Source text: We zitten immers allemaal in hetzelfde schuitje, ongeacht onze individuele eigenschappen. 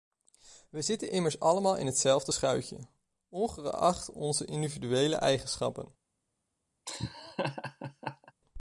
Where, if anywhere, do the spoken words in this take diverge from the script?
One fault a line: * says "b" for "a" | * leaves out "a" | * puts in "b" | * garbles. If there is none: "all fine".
all fine